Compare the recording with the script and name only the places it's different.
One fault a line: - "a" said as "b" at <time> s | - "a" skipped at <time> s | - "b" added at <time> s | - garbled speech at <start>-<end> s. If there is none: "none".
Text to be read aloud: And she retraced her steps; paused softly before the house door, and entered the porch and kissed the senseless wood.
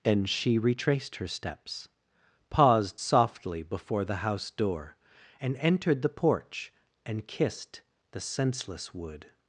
none